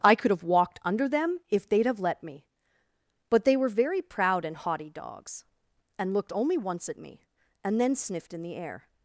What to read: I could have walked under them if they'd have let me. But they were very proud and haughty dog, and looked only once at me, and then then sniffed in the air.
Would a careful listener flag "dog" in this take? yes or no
yes